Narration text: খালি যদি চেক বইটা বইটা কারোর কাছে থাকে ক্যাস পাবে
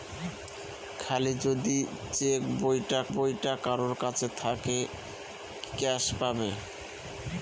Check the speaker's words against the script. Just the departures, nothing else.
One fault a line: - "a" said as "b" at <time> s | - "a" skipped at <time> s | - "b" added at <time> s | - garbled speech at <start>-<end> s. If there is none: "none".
none